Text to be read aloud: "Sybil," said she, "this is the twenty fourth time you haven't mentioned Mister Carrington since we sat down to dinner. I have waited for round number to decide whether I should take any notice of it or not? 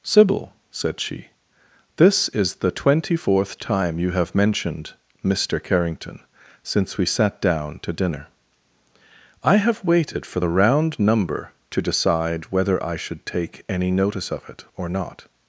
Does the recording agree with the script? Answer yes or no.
no